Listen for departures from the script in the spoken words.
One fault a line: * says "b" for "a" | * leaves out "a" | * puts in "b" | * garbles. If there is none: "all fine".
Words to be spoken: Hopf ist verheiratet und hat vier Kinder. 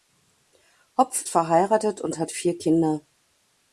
* leaves out "ist"